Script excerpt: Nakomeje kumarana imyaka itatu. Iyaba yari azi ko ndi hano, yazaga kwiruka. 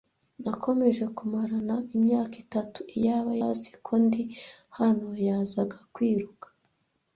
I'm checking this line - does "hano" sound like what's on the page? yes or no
yes